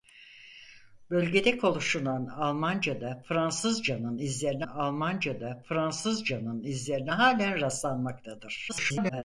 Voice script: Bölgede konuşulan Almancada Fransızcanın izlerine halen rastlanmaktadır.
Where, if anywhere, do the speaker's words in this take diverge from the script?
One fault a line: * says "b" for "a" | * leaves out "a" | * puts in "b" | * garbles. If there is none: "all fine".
* puts in "Almancada Fransızcanın izlerine"
* garbles